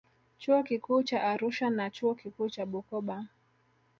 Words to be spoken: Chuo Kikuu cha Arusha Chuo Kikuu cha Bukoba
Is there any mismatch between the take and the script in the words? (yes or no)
yes